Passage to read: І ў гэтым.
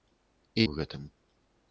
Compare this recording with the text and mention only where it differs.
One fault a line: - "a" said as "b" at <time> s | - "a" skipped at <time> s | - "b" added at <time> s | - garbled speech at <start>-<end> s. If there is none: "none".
none